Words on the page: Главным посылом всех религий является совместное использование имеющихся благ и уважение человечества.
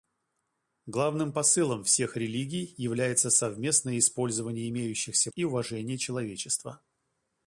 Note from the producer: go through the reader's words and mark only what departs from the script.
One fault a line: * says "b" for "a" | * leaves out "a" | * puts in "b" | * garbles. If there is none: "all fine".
* leaves out "благ"